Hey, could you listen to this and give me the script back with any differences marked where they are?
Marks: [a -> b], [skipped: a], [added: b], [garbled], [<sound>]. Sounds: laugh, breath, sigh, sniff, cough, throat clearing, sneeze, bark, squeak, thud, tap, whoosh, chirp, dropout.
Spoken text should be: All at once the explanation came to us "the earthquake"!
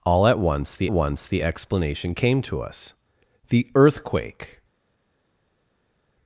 All at once the [added: once the] explanation came to us "the earthquake"!